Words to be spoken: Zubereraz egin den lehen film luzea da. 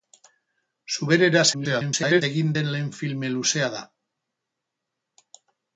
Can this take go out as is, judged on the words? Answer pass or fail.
fail